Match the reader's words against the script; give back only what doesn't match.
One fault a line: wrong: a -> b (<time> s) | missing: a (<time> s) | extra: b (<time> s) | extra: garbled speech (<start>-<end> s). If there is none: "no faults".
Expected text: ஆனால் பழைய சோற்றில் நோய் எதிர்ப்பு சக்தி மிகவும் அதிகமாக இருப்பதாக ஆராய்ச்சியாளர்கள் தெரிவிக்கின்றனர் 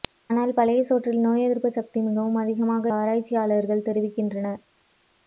missing: இருப்பதாக (2.9 s)